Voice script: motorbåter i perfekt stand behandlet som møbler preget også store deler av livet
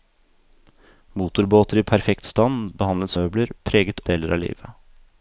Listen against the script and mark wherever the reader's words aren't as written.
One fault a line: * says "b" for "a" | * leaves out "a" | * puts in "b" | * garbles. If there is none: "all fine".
* leaves out "som"
* leaves out "også store"